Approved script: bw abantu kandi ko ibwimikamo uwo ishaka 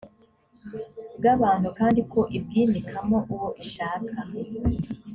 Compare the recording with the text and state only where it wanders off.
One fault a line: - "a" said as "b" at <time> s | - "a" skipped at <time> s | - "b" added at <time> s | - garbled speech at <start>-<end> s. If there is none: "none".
none